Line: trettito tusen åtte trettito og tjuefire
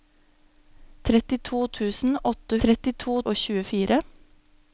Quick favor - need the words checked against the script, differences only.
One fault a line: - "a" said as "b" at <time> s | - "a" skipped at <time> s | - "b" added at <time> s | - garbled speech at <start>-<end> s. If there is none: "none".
none